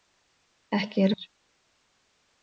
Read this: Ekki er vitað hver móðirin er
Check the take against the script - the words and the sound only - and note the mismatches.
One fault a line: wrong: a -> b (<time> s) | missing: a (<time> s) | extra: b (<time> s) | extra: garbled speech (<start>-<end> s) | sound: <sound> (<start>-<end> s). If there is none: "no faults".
missing: vitað hver móðirin (1.1 s)